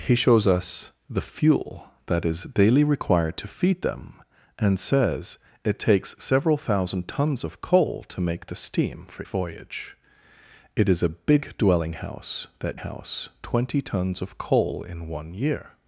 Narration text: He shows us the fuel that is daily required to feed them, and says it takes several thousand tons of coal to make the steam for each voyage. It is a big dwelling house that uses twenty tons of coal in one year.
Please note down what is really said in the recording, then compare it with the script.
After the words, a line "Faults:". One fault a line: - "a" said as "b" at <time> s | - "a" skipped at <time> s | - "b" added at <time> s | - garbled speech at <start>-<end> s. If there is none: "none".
He shows us the fuel that is daily required to feed them, and says it takes several thousand tons of coal to make the steam for voyage. It is a big dwelling house that house twenty tons of coal in one year.
Faults:
- "each" skipped at 9.2 s
- "uses" said as "house" at 12.7 s